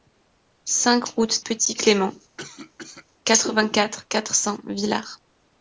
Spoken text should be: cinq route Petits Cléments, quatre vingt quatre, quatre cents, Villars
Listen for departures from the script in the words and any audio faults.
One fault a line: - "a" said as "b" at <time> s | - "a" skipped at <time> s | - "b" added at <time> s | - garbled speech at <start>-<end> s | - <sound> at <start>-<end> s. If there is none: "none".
- cough at 2.4-3.1 s